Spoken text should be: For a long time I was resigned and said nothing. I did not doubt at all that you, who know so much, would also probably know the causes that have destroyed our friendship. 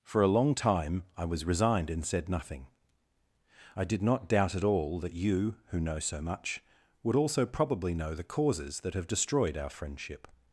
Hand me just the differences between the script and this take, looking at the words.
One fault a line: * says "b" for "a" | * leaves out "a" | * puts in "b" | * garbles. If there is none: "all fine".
all fine